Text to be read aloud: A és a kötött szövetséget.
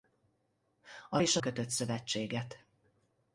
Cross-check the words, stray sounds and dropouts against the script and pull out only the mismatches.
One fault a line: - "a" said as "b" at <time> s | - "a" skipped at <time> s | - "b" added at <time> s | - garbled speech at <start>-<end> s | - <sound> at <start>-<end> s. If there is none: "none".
none